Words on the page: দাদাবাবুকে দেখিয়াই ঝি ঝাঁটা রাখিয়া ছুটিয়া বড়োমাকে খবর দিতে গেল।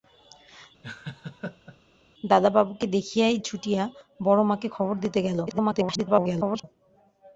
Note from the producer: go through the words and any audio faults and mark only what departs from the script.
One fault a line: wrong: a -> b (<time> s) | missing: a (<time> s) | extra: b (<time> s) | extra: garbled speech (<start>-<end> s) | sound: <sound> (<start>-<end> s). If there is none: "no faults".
sound: laugh (0.8-1.8 s)
missing: ঝি ঝাঁটা রাখিয়া (3.4 s)
extra: garbled speech (5.5-6.6 s)